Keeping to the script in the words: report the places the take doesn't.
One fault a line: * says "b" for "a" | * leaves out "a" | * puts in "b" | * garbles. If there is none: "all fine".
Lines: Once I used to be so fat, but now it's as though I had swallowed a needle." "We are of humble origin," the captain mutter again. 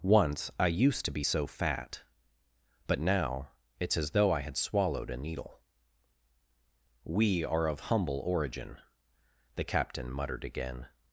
* says "muttered" for "mutter"